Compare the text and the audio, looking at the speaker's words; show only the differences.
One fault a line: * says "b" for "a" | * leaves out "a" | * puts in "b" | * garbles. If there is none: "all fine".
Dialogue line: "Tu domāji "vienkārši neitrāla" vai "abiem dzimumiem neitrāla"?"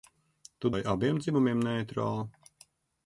* leaves out "domāji vienkārši neitrāla"